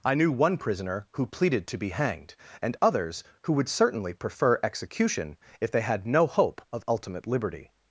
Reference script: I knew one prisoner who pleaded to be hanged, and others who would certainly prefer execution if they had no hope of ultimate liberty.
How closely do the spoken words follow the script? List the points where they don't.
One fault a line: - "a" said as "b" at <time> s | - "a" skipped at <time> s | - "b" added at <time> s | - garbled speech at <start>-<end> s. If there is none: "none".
none